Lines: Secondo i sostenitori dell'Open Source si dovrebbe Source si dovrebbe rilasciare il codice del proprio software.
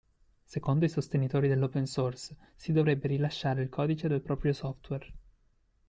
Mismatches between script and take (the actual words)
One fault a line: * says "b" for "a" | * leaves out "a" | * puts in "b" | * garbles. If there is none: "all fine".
* leaves out "Source si dovrebbe"